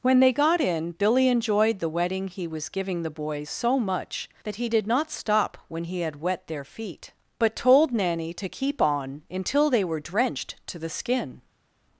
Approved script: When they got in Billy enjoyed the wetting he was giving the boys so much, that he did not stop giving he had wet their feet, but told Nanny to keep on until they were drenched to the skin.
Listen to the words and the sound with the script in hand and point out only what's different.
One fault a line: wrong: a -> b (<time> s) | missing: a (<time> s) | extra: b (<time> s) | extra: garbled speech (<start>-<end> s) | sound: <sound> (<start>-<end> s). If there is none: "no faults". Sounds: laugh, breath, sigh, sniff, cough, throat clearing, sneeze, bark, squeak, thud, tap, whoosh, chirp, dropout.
wrong: giving -> when (5.7 s)